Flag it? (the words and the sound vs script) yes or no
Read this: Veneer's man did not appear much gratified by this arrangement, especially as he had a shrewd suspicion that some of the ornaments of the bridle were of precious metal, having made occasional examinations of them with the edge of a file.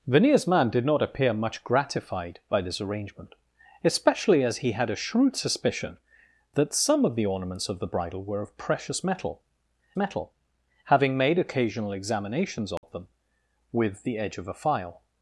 yes